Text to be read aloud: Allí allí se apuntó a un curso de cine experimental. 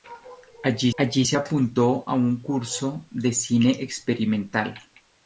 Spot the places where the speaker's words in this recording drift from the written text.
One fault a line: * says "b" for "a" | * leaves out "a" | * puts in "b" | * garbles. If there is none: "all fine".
all fine